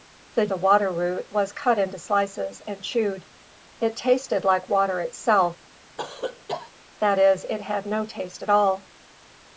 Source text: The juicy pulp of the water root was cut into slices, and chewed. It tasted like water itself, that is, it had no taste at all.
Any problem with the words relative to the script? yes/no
yes